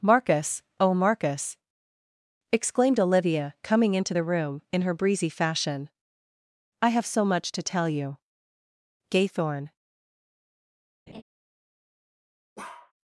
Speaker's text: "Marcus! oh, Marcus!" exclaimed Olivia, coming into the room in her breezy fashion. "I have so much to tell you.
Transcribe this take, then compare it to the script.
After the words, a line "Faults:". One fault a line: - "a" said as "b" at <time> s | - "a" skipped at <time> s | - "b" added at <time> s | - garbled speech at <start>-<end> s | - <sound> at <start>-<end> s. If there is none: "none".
"Marcus! oh, Marcus!" exclaimed Olivia, coming into the room in her breezy fashion. "I have so much to tell you. Gaythorne
Faults:
- "Gaythorne" added at 9.1 s
- laugh at 11.1-11.2 s
- bark at 12.6-12.9 s